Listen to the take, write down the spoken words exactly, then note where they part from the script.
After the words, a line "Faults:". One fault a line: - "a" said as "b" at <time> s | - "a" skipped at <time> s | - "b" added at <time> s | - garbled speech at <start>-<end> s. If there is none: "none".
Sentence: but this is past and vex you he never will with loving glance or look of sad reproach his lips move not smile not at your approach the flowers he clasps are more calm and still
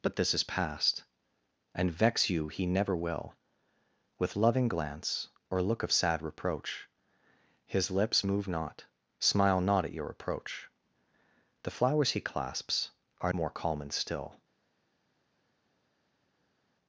but this is past and vex you he never will with loving glance or look of sad reproach his lips move not smile not at your approach the flowers he clasps are more calm and still
Faults:
none